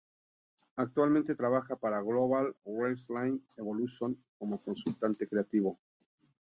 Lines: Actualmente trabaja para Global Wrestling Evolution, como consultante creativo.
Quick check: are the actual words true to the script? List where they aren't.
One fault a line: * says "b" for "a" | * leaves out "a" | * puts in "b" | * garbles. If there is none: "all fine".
all fine